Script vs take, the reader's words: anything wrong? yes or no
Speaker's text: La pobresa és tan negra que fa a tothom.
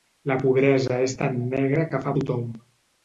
no